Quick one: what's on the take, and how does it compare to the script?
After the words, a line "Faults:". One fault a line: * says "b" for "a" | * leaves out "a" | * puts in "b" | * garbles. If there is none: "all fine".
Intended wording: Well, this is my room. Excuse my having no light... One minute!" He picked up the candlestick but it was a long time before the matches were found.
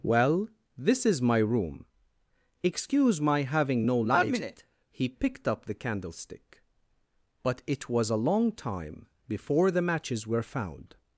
Well, this is my room. Excuse my having no light... One minute!" He picked up the candlestick but it was a long time before the matches were found.
Faults:
all fine